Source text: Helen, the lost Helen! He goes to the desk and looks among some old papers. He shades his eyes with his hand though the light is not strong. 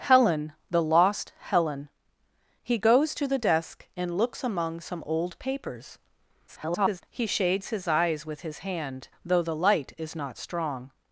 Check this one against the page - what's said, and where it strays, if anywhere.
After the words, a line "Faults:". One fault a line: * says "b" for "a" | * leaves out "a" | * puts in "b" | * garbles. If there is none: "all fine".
Helen, the lost Helen! He goes to the desk and looks among some old papers. [garbled] He shades his eyes with his hand though the light is not strong.
Faults:
* garbles